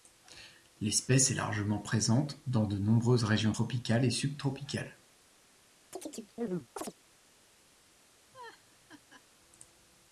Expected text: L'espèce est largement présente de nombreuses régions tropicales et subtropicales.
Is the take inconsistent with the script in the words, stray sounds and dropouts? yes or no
yes